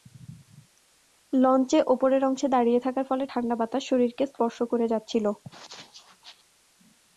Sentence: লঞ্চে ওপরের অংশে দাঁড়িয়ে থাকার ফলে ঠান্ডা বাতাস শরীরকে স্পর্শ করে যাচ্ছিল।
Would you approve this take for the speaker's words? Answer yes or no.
yes